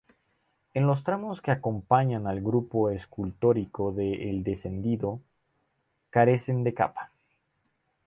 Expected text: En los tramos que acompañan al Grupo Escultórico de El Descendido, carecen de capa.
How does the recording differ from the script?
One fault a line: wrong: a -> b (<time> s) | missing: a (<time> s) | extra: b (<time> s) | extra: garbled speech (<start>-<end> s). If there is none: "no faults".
no faults